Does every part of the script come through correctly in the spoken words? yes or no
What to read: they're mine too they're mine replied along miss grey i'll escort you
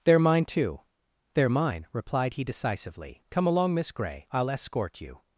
no